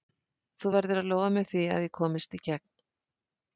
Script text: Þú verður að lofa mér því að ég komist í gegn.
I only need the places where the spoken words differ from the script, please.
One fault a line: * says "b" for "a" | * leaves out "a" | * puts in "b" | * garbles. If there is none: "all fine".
all fine